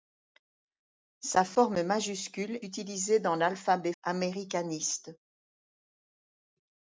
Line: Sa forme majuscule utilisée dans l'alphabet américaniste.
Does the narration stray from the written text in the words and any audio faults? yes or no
no